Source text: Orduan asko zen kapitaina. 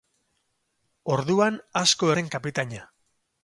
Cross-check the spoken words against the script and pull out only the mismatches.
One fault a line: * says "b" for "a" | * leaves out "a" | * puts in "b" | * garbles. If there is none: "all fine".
all fine